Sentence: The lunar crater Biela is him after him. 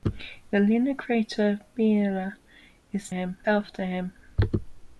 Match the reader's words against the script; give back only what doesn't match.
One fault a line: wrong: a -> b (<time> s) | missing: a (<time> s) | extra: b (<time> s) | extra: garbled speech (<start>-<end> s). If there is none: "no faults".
no faults